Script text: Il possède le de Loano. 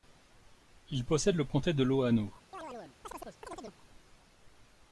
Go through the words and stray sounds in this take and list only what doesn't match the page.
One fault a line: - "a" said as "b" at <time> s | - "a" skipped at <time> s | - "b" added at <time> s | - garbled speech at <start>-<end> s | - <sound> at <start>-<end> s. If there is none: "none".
- "comté" added at 1.4 s
- chirp at 2.5-3.8 s